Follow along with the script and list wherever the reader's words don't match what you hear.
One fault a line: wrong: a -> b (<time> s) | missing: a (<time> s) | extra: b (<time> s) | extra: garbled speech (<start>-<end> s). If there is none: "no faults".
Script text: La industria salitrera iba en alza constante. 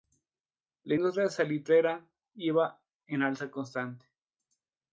no faults